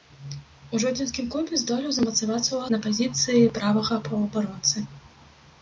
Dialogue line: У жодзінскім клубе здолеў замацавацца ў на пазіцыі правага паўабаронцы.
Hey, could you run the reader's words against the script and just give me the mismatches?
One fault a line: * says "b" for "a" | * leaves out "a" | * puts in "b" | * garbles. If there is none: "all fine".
all fine